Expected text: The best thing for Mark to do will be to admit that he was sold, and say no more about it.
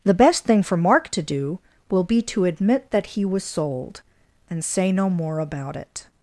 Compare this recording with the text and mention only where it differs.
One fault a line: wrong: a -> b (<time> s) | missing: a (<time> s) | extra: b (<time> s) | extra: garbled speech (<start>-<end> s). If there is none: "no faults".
no faults